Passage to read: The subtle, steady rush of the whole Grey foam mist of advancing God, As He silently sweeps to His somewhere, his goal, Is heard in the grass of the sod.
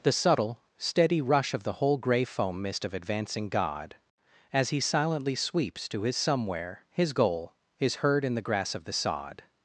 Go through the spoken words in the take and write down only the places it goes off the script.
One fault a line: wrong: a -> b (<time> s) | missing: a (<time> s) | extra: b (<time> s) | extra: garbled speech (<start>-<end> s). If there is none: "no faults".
no faults